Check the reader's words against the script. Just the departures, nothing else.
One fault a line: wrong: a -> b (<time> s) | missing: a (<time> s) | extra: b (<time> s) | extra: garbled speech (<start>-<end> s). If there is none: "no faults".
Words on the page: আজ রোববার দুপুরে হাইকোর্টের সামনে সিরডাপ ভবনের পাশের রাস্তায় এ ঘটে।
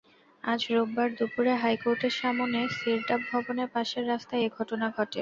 extra: ঘটনা (4.6 s)